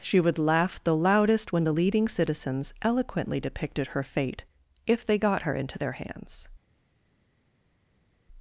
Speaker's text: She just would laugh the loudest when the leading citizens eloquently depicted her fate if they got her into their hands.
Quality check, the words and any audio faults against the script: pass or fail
fail